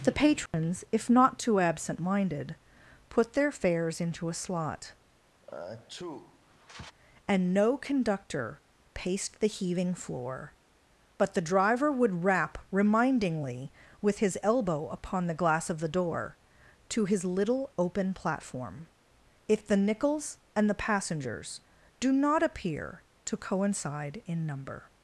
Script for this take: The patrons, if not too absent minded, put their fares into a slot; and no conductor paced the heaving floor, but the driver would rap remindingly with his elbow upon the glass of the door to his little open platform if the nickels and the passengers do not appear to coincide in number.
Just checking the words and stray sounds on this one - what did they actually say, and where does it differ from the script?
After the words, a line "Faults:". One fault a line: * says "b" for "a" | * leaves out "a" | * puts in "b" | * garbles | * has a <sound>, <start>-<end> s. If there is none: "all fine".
The patrons, if not too absent minded, put their fares into a slot; and no conductor paced the heaving floor, but the driver would rap remindingly with his elbow upon the glass of the door to his little open platform if the nickels and the passengers do not appear to coincide in number.
Faults:
* has a dropout, 0.5-0.5 s
* has a sneeze, 5.4-6.9 s